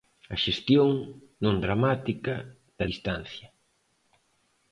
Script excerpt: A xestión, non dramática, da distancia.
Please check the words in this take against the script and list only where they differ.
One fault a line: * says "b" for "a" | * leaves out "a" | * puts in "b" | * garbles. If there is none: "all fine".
all fine